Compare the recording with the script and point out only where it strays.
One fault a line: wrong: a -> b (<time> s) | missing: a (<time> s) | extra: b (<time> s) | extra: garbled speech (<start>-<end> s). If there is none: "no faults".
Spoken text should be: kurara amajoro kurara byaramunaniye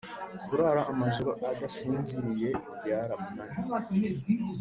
wrong: kurara -> adasinziriye (1.5 s)